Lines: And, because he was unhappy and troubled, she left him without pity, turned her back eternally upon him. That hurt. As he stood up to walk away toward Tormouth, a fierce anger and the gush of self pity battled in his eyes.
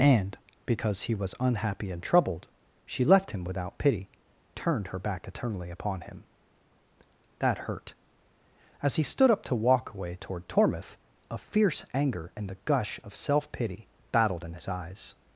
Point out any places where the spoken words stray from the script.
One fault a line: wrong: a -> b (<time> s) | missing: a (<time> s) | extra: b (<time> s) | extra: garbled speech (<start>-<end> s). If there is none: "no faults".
no faults